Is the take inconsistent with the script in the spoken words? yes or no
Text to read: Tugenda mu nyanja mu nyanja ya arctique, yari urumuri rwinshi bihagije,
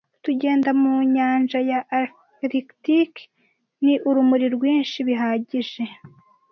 yes